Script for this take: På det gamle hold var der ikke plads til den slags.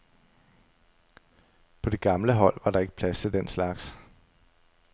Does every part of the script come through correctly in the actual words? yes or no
yes